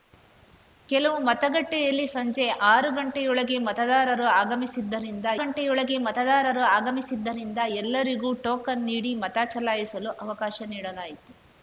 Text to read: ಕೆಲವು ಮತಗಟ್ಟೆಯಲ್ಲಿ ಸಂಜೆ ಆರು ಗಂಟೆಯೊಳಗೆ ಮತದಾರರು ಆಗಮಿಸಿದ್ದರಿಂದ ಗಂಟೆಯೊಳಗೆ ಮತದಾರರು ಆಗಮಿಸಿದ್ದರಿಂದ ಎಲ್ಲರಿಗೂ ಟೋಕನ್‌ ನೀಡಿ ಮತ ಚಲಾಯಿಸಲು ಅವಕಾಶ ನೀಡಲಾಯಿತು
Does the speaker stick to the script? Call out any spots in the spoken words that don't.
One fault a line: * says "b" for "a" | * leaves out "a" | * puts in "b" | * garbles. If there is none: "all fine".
all fine